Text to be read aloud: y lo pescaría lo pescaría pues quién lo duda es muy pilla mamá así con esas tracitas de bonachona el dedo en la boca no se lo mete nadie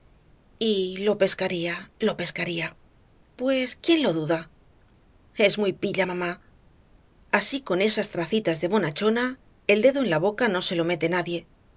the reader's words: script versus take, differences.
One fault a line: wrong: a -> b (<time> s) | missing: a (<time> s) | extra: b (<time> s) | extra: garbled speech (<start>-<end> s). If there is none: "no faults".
no faults